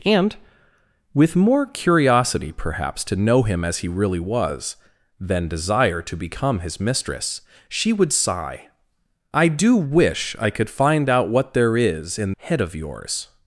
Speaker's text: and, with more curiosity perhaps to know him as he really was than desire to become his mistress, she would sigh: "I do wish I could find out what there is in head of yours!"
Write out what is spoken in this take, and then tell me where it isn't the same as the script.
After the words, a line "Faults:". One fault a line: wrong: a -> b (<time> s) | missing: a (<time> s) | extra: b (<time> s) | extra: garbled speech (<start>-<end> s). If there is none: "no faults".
and, with more curiosity perhaps to know him as he really was than desire to become his mistress, she would sigh: "I do wish I could find out what there is in head of yours!"
Faults:
no faults